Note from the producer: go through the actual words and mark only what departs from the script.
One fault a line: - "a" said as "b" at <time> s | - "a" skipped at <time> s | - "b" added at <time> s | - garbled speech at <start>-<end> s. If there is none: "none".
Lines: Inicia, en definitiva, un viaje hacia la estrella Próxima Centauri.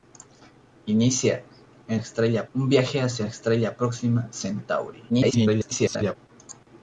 - "definitiva" said as "estrella" at 2.0 s
- "la" skipped at 3.3 s
- garbled speech at 5.1-6.2 s